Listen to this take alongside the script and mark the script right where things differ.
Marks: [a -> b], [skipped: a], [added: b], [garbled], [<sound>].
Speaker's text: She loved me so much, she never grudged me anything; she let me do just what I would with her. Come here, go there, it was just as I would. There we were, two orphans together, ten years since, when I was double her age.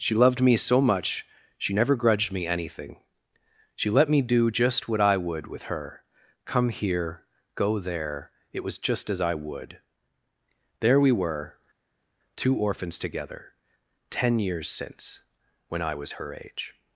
She loved me so much, she never grudged me anything; she let me do just what I would with her. Come here, go there, it was just as I would. There we were, two orphans together, ten years since, when I was [skipped: double] her age.